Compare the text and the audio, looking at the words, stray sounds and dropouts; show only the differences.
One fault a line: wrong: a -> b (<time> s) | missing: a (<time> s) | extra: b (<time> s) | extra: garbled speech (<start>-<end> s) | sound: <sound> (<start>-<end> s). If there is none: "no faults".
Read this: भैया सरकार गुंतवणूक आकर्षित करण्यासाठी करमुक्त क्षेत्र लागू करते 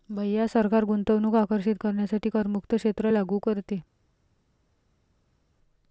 no faults